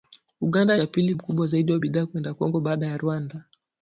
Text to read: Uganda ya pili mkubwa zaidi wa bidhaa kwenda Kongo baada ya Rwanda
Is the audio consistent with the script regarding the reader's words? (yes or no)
yes